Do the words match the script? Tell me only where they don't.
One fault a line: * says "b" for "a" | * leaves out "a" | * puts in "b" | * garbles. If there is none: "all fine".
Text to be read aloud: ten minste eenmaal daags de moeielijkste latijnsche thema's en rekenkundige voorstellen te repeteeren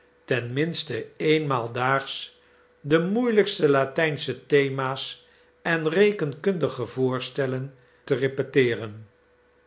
all fine